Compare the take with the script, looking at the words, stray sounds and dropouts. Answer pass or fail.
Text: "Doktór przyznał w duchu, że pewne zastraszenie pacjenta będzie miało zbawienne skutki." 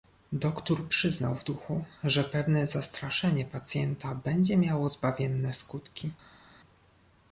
pass